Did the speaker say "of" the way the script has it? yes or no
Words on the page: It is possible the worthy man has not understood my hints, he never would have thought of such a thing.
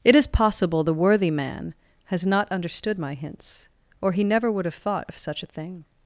yes